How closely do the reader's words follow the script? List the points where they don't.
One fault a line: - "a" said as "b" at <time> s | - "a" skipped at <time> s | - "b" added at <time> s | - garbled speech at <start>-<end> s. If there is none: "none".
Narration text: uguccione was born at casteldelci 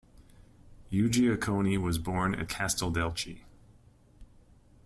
none